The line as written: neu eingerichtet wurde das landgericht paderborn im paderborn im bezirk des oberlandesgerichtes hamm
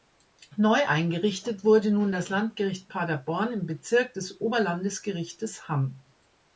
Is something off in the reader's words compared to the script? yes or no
yes